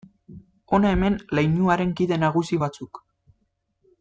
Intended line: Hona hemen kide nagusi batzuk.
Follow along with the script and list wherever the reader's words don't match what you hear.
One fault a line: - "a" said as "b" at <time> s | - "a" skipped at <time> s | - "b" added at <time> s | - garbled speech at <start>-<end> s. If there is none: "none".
- "leinuaren" added at 1.4 s